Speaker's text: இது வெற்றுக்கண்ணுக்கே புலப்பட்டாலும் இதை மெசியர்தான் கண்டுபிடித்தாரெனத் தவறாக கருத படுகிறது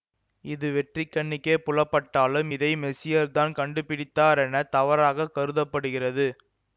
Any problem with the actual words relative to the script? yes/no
no